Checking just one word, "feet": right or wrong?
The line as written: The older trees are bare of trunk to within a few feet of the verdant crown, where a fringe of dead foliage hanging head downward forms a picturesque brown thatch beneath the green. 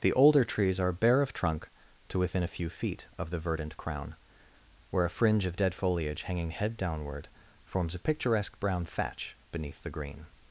right